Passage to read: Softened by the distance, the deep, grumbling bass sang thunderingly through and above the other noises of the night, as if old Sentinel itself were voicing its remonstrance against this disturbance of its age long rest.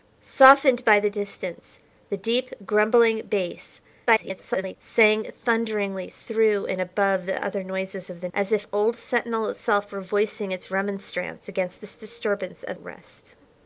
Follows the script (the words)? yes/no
no